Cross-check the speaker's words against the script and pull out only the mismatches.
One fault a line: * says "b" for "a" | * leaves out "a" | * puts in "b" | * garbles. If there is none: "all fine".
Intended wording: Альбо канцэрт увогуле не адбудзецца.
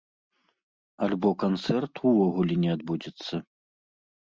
all fine